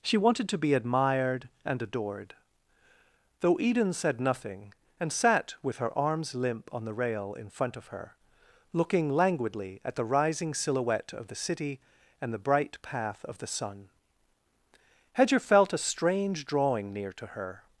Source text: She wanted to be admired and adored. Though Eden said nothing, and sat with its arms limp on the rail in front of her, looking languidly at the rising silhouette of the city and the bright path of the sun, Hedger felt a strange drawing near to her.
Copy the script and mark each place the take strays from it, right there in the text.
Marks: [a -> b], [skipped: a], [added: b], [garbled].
She wanted to be admired and adored. Though Eden said nothing, and sat with [its -> her] arms limp on the rail in front of her, looking languidly at the rising silhouette of the city and the bright path of the sun, Hedger felt a strange drawing near to her.